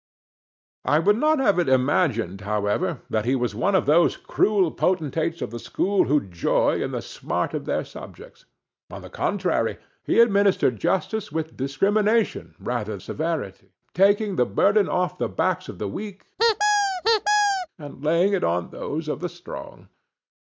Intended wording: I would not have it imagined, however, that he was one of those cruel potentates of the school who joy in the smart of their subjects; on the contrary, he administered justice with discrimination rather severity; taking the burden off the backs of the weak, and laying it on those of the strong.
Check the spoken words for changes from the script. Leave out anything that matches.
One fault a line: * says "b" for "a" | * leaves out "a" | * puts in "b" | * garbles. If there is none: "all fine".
all fine